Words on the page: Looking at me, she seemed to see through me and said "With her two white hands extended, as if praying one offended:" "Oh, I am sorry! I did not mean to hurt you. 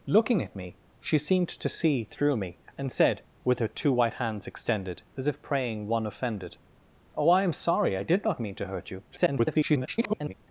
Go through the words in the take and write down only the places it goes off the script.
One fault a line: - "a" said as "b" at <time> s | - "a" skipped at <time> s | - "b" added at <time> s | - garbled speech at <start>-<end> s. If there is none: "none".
- garbled speech at 9.1-10.3 s